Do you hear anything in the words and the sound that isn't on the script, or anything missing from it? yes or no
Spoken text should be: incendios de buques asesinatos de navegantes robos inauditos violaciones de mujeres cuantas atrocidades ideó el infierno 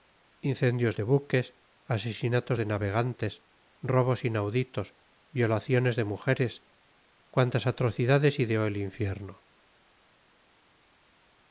no